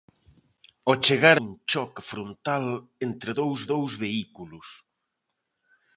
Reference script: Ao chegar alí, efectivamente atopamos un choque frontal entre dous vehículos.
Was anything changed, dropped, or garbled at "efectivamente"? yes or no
yes